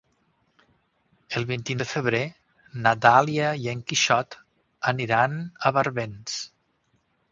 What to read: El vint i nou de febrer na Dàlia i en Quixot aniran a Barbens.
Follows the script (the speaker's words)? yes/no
no